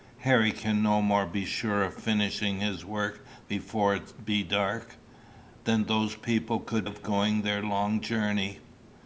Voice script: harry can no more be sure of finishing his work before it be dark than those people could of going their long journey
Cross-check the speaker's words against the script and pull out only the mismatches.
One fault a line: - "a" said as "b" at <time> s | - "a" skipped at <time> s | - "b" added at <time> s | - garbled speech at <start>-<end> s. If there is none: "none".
none